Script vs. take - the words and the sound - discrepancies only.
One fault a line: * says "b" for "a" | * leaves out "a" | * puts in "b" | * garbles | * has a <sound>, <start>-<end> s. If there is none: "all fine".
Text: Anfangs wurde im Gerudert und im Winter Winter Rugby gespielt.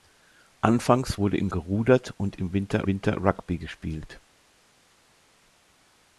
all fine